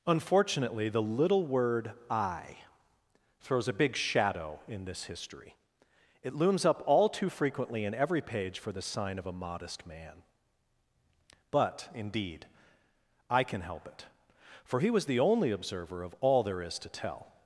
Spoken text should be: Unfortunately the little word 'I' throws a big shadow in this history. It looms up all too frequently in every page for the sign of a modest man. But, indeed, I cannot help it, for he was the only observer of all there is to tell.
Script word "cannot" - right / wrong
wrong